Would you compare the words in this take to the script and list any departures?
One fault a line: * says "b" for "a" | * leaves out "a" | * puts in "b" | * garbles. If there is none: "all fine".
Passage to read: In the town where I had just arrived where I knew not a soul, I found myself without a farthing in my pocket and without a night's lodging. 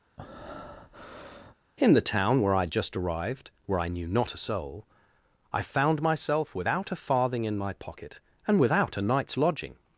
all fine